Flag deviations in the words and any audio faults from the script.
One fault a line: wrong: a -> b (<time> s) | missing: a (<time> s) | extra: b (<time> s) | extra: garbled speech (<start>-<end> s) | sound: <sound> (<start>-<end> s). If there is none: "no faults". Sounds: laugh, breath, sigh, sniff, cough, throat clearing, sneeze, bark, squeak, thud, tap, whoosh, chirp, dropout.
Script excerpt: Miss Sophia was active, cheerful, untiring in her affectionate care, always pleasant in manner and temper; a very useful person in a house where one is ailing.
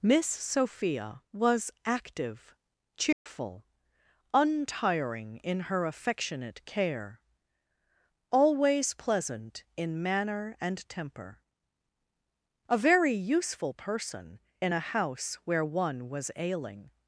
sound: dropout (3.1-3.3 s)
wrong: is -> was (16.1 s)